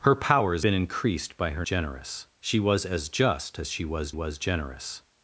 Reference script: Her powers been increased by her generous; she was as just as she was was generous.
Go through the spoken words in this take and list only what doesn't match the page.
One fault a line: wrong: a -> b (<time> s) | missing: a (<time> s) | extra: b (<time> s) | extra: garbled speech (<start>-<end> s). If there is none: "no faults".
no faults